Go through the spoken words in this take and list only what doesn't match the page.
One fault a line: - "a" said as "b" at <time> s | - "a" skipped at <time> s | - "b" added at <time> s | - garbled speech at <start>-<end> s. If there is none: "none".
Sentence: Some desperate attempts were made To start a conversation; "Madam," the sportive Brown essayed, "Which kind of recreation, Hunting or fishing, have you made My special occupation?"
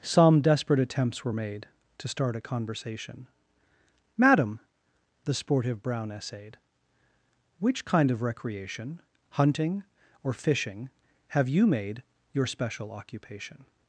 - "My" said as "Your" at 12.3 s